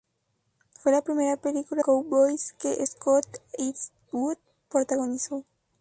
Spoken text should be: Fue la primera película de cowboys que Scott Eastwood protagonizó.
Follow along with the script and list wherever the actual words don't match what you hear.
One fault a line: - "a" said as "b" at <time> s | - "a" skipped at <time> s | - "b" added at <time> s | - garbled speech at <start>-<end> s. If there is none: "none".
- "de" skipped at 1.8 s